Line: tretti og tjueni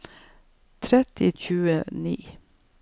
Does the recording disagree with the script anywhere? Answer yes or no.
no